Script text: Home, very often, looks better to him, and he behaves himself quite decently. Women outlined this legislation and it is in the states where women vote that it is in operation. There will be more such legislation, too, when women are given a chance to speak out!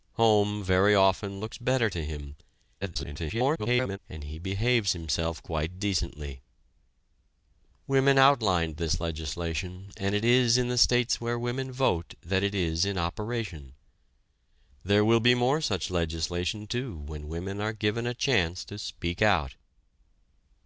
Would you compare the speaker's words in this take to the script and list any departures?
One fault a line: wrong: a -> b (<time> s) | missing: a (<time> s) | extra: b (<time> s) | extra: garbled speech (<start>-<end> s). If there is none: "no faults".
extra: garbled speech (2.8-4.0 s)